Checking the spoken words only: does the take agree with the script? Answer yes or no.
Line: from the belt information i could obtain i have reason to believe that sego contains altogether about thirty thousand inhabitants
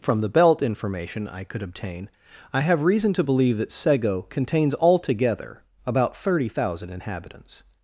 yes